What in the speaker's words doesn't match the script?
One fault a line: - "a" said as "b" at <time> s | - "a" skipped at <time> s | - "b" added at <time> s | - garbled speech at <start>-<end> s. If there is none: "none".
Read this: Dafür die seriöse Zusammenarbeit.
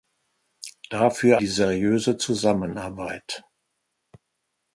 none